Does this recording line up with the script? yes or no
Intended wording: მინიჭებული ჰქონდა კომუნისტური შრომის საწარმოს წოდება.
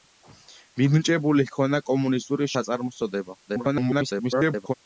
no